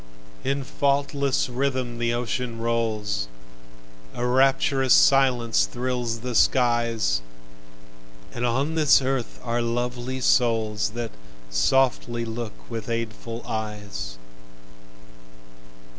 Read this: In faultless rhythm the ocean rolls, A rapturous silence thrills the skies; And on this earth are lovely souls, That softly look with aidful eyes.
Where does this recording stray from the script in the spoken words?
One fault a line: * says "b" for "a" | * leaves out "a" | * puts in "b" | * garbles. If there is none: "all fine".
all fine